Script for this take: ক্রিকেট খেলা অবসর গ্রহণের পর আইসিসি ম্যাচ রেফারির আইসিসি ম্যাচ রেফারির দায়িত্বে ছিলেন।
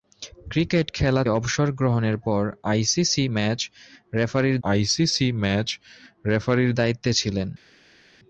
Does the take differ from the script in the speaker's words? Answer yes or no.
no